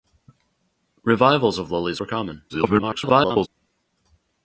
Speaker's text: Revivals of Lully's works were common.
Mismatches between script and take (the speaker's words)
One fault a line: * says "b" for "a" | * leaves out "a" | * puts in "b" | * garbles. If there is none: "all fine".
* leaves out "works"
* garbles